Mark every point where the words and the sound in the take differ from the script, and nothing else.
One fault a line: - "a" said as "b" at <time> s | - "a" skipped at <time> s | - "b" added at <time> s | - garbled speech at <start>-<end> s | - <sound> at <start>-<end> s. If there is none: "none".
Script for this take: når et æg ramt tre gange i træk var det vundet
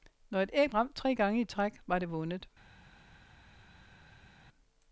none